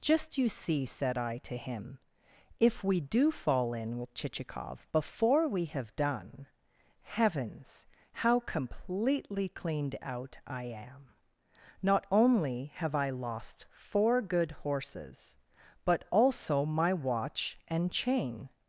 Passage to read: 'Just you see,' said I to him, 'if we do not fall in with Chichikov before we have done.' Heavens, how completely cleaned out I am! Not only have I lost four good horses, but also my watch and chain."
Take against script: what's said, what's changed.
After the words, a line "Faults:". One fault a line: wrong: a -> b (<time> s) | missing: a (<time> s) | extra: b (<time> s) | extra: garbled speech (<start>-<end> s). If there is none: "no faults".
'Just you see,' said I to him, 'if we do fall in with Chichikov before we have done.' Heavens, how completely cleaned out I am! Not only have I lost four good horses, but also my watch and chain."
Faults:
missing: not (3.3 s)